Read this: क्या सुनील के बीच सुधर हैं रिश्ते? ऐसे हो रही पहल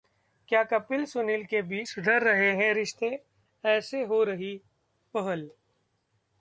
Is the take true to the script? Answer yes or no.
no